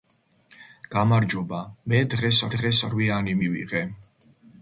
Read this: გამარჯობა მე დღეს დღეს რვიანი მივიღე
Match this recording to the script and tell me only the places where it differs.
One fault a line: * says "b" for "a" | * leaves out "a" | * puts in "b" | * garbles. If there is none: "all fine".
all fine